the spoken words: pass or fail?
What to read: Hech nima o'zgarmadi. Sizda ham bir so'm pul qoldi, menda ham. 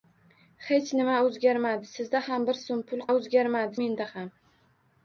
fail